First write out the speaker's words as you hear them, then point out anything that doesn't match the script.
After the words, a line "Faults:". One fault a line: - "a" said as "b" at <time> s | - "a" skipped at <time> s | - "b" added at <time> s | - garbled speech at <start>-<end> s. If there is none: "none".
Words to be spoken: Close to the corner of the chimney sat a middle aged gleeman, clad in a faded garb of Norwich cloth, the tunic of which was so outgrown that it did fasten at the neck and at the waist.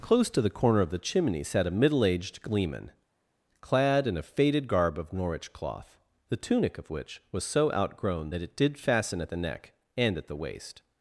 Close to the corner of the chimney sat a middle aged gleeman, clad in a faded garb of Norwich cloth, the tunic of which was so outgrown that it did fasten at the neck and at the waist.
Faults:
none